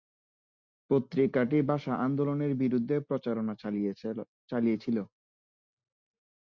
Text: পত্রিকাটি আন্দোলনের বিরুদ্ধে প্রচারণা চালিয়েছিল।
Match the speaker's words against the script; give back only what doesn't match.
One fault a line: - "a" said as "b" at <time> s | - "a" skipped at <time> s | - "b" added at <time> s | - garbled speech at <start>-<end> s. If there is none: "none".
- "ভাষা" added at 1.7 s